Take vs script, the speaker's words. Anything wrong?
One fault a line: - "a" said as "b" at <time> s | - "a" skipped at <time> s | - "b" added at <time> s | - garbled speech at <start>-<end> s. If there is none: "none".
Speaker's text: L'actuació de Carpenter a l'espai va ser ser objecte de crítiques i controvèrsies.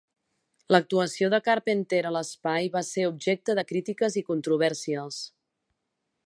- "ser" skipped at 3.0 s